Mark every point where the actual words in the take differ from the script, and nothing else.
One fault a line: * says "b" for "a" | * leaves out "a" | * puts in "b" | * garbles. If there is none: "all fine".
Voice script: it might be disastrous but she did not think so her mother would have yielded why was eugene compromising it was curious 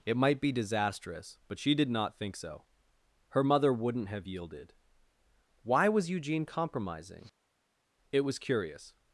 * says "wouldn't" for "would"